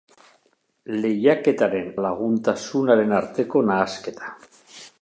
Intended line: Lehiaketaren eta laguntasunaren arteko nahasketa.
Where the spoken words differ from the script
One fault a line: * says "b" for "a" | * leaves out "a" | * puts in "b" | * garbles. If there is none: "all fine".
* leaves out "eta"